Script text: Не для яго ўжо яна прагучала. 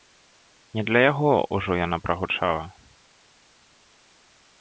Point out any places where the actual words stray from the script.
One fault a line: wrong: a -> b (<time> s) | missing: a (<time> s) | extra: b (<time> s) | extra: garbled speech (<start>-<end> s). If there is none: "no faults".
no faults